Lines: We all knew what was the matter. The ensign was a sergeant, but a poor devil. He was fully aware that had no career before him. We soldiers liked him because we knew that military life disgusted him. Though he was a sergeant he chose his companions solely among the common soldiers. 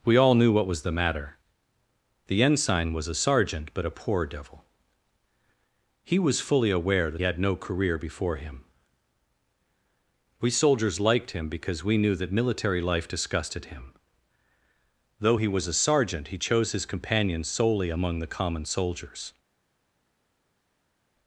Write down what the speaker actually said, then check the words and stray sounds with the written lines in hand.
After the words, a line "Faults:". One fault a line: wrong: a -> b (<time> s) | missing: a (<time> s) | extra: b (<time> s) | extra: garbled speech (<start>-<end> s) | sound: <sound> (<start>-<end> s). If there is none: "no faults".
We all knew what was the matter. The ensign was a sergeant, but a poor devil. He was fully aware that had no career before him. We soldiers liked him because we knew that military life disgusted him. Though he was a sergeant he chose his companions solely among the common soldiers.
Faults:
no faults